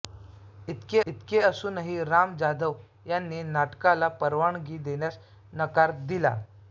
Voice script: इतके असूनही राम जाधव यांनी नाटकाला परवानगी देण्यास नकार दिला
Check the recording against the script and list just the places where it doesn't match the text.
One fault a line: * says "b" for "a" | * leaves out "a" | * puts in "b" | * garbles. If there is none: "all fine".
* puts in "इतके"